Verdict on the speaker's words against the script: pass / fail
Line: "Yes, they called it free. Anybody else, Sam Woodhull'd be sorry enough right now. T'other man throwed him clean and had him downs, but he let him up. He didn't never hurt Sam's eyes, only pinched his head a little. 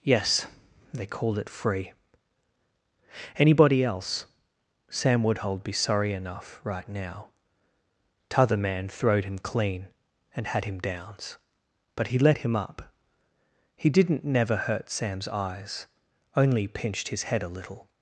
pass